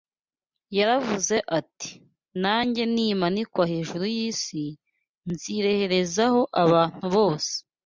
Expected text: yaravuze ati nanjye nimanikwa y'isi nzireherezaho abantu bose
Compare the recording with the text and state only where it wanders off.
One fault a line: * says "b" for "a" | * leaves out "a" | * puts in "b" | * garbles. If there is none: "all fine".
* puts in "hejuru"